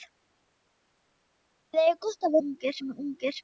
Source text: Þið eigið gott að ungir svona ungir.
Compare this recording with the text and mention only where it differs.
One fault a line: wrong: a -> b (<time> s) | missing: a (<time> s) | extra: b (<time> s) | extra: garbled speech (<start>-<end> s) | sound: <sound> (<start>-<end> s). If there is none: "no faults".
no faults